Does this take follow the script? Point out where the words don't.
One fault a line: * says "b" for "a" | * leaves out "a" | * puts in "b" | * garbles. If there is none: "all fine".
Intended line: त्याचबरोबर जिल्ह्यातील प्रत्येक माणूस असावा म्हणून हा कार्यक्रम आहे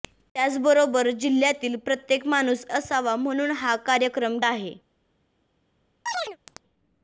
all fine